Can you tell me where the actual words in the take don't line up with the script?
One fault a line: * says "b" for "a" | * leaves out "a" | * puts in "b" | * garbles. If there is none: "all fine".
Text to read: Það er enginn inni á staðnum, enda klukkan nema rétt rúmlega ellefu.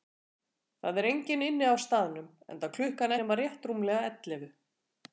all fine